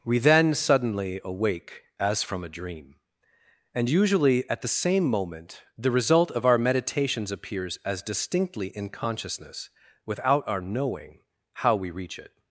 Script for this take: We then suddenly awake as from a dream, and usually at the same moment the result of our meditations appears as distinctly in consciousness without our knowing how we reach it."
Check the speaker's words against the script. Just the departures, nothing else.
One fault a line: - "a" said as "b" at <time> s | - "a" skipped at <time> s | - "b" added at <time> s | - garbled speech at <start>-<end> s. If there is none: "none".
none